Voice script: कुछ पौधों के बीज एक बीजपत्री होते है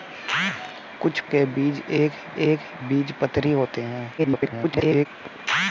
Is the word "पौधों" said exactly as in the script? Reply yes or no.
no